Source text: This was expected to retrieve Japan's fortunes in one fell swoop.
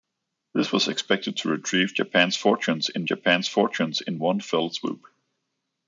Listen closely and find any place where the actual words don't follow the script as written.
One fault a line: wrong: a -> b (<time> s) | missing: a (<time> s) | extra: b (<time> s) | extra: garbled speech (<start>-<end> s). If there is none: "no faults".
extra: Japan's fortunes in (3.0 s)